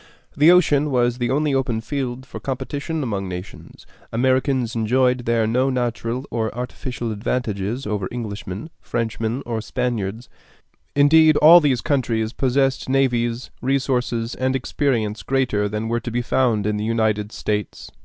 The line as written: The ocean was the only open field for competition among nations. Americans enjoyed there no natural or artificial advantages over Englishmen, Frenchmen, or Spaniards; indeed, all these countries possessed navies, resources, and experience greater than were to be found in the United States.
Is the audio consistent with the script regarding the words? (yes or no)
yes